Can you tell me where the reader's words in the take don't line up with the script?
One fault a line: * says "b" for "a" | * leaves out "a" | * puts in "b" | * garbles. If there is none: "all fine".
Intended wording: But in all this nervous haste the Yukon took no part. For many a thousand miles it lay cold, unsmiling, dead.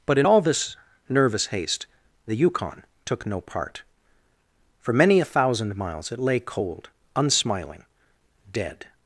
all fine